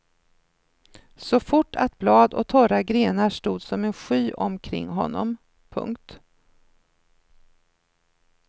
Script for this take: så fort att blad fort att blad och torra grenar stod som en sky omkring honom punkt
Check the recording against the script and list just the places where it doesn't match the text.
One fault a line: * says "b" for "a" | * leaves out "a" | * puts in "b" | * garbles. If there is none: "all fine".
* leaves out "fort att blad"